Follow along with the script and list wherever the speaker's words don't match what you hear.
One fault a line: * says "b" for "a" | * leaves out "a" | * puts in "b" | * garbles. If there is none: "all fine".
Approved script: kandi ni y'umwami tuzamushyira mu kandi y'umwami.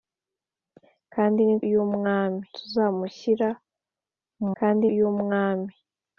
all fine